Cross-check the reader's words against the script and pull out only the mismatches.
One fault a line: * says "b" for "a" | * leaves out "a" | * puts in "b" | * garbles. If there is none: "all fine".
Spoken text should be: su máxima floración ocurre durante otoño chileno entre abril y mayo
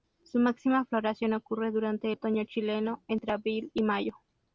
all fine